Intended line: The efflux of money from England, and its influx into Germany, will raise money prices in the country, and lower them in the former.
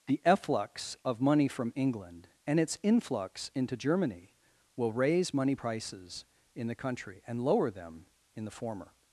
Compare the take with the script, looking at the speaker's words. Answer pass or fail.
pass